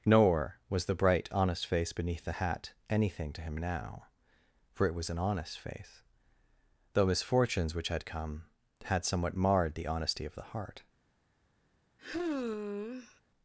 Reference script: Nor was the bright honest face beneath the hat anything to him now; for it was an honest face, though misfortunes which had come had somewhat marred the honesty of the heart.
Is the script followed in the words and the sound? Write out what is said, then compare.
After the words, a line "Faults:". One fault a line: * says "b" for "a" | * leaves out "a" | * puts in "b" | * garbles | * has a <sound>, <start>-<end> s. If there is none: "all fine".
Nor was the bright honest face beneath the hat anything to him now; for it was an honest face, though misfortunes which had come had somewhat marred the honesty of the heart.
Faults:
* has a sigh, 12.0-13.2 s